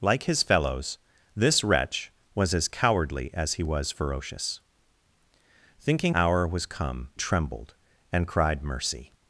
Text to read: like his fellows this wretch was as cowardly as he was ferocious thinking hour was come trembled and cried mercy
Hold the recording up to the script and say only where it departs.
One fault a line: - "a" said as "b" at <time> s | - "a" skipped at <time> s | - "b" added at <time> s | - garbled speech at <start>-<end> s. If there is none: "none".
none